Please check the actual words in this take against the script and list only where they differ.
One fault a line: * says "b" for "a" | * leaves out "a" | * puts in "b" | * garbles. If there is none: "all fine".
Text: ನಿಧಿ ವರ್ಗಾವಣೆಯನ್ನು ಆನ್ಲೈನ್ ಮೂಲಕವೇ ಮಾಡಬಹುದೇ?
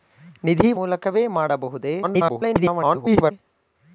* leaves out "ವರ್ಗಾವಣೆಯನ್ನು ಆನ್ಲೈನ್"
* garbles